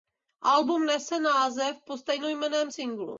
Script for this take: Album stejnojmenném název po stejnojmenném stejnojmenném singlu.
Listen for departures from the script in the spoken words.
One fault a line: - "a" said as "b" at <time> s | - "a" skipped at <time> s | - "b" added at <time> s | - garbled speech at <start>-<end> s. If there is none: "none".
- "stejnojmenném" said as "nese" at 0.8 s
- "stejnojmenném" skipped at 2.7 s